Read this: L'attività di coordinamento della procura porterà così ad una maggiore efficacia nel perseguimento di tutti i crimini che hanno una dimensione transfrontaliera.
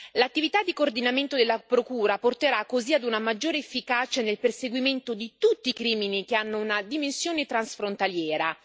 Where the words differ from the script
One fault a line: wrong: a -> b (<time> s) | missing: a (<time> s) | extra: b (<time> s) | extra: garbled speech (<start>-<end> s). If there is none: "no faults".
no faults